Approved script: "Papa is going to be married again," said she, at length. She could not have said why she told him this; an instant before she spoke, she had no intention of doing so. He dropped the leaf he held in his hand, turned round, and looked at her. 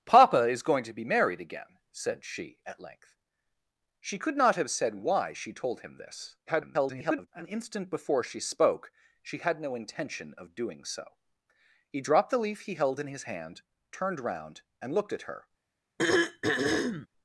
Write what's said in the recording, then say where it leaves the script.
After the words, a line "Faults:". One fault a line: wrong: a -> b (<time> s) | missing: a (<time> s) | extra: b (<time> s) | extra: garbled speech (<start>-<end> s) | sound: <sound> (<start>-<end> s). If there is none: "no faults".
"Papa is going to be married again," said she, at length. She could not have said why she told him this; [garbled] an instant before she spoke, she had no intention of doing so. He dropped the leaf he held in his hand, turned round, and looked at her.
Faults:
extra: garbled speech (6.5-7.3 s)
sound: throat clearing (16.0-17.1 s)